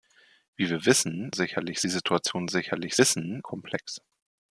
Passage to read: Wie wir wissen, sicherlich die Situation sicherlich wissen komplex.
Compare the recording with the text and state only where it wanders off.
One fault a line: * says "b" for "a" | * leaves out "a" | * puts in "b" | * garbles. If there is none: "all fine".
all fine